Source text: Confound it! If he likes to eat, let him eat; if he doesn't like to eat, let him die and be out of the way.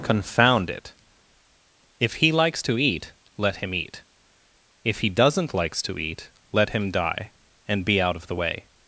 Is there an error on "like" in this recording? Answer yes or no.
yes